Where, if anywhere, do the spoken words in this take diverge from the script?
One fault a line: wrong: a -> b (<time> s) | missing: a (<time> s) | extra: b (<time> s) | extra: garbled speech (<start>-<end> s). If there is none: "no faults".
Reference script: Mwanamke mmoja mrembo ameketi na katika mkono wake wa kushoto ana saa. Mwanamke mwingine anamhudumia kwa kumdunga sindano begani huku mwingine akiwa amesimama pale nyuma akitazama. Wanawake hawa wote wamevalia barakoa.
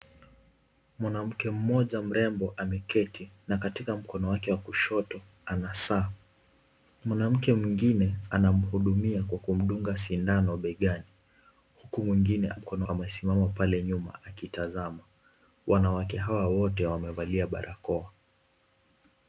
wrong: akiwa -> mkono (12.5 s)